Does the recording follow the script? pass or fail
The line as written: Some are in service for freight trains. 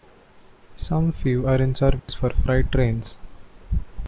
fail